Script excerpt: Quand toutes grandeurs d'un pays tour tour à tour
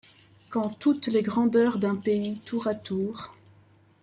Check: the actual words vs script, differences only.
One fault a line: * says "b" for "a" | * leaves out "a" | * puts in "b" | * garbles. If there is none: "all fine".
* puts in "les"
* leaves out "tour"